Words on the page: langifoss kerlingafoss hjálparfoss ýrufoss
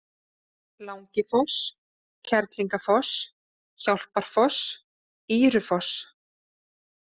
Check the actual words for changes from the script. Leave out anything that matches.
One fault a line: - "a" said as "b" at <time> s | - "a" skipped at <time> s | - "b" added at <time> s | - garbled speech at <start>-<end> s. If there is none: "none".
none